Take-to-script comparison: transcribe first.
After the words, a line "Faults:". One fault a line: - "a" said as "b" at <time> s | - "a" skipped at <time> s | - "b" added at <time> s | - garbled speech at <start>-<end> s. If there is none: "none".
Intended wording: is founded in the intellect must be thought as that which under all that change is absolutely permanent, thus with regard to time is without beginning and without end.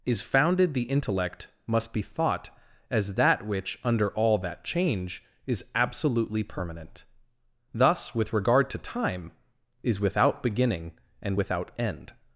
is founded the intellect must be thought as that which under all that change is absolutely permanent, thus with regard to time is without beginning and without end.
Faults:
- "in" skipped at 0.7 s